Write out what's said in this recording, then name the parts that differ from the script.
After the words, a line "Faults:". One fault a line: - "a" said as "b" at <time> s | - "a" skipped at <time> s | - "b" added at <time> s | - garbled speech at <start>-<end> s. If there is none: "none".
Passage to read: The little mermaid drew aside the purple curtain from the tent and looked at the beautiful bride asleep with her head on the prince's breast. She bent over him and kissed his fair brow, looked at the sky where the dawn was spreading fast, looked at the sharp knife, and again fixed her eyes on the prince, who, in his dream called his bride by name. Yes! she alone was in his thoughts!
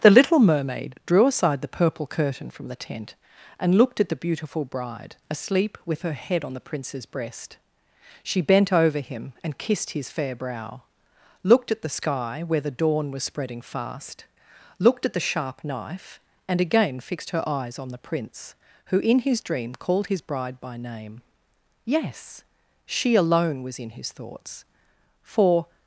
The little mermaid drew aside the purple curtain from the tent and looked at the beautiful bride asleep with her head on the prince's breast. She bent over him and kissed his fair brow, looked at the sky where the dawn was spreading fast, looked at the sharp knife, and again fixed her eyes on the prince, who, in his dream called his bride by name. Yes! she alone was in his thoughts! For
Faults:
- "For" added at 25.2 s